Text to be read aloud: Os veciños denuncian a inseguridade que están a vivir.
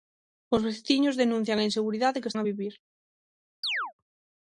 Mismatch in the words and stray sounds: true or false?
true